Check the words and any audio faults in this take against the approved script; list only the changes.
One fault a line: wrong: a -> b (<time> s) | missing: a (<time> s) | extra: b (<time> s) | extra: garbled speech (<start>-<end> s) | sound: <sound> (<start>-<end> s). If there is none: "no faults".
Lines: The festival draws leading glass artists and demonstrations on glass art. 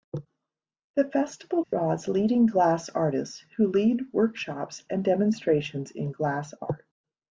sound: dropout (1.6-1.7 s)
extra: who lead workshops (3.6 s)
wrong: on -> in (5.9 s)